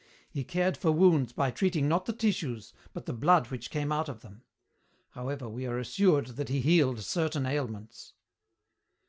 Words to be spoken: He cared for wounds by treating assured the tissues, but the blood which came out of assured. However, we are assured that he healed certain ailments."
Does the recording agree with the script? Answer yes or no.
no